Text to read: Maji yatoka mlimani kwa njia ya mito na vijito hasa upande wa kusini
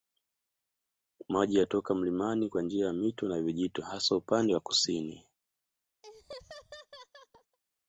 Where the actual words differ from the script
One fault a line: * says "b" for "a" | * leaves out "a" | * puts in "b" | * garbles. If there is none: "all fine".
all fine